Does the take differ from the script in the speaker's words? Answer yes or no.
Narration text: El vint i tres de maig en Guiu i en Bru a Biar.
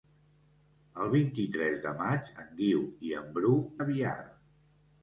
no